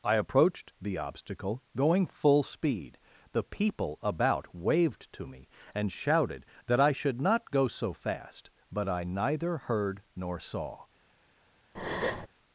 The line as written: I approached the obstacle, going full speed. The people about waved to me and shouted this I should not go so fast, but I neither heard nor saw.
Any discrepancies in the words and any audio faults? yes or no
yes